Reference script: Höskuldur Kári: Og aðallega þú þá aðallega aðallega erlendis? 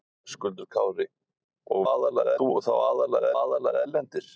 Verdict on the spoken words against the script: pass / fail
pass